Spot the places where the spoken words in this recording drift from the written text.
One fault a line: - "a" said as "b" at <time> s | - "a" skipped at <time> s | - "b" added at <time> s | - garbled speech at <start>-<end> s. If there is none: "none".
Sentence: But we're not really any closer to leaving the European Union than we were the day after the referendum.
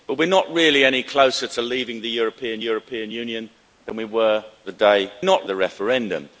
- "European" added at 2.6 s
- "after" said as "not" at 5.2 s